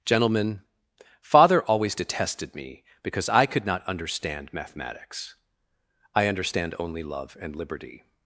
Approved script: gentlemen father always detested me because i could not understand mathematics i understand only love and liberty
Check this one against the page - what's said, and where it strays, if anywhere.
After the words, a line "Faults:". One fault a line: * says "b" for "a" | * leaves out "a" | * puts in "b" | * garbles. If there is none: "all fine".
gentlemen father always detested me because i could not understand mathematics i understand only love and liberty
Faults:
all fine